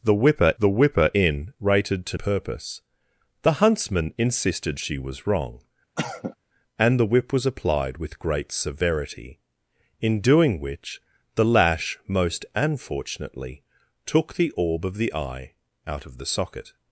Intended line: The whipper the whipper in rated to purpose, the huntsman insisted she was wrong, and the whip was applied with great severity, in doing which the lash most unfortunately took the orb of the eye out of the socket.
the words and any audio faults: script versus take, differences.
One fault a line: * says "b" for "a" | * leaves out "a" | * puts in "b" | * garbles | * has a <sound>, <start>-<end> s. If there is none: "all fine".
* has a cough, 6.0-6.4 s